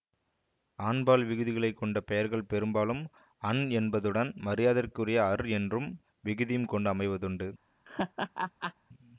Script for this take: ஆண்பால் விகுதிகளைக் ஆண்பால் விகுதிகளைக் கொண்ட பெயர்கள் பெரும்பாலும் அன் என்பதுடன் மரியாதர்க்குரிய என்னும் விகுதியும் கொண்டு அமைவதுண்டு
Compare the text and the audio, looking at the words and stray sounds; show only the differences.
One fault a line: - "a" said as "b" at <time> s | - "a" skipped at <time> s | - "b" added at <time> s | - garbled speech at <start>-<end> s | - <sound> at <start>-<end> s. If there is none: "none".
- "ஆண்பால் விகுதிகளைக்" skipped at 1.8 s
- "அர்" added at 5.3 s
- laugh at 7.8-8.7 s